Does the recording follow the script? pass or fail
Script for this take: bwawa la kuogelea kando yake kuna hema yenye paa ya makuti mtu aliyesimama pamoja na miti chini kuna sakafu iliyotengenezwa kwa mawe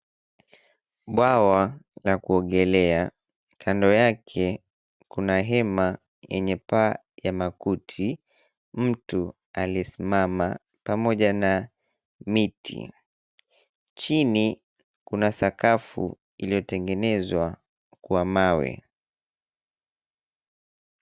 pass